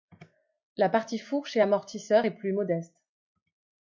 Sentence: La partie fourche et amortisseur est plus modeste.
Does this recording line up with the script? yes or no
yes